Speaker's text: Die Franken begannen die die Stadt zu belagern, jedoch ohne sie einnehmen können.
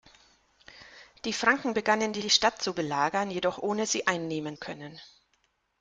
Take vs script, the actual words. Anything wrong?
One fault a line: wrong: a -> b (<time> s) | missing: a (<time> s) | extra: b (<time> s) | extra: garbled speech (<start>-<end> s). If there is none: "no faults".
no faults